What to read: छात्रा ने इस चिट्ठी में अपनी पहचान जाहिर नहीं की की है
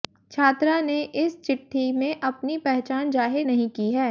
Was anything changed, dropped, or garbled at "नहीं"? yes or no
no